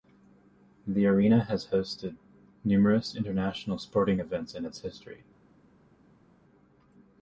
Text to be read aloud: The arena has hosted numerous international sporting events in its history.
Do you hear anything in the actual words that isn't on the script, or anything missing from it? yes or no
no